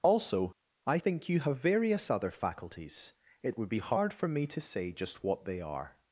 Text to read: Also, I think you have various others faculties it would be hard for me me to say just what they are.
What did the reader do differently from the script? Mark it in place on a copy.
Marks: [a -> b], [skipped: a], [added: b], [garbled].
Also, I think you have various [others -> other] faculties it would be hard for me [skipped: me] to say just what they are.